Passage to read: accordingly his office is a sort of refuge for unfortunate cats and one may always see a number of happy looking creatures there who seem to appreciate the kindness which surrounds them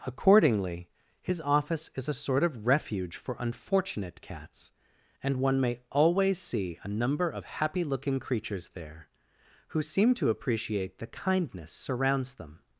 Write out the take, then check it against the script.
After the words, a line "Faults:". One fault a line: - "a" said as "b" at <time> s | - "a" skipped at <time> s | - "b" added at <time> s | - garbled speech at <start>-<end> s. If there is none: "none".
accordingly his office is a sort of refuge for unfortunate cats and one may always see a number of happy looking creatures there who seem to appreciate the kindness surrounds them
Faults:
- "which" skipped at 11.7 s